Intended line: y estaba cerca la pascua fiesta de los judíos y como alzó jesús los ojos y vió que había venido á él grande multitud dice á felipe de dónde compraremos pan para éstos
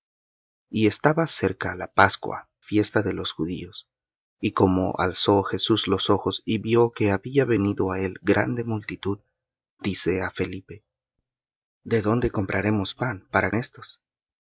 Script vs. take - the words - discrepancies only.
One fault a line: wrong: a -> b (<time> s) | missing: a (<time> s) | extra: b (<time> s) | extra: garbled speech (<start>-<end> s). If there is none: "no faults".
no faults